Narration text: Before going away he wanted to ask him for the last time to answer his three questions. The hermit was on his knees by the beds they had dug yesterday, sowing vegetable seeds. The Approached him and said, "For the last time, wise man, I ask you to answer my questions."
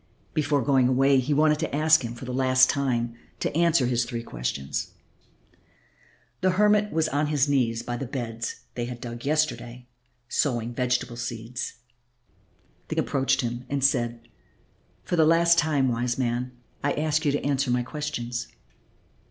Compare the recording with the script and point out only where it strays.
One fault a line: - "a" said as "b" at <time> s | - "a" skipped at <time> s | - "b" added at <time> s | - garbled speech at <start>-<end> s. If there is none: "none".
none